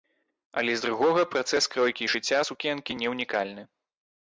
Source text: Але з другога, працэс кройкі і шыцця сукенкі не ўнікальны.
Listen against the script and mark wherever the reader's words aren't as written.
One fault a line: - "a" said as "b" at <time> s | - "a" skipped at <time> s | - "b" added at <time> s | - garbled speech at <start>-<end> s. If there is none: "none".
none